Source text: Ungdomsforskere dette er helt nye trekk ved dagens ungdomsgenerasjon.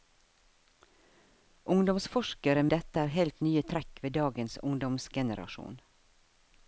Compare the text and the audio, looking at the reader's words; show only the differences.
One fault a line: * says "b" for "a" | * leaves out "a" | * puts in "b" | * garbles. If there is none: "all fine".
all fine